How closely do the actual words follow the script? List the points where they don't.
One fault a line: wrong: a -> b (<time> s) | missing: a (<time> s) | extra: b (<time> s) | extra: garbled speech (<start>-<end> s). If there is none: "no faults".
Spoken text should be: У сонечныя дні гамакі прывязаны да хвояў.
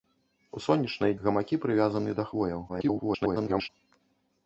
missing: дні (1.1 s)
extra: garbled speech (2.7-3.7 s)